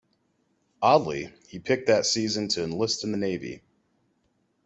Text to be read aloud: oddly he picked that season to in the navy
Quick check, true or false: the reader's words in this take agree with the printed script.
false